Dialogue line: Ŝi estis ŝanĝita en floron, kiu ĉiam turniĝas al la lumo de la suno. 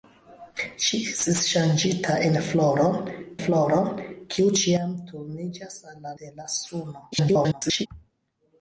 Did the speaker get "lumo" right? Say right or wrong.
wrong